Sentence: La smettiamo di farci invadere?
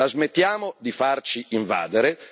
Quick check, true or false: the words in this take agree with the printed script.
true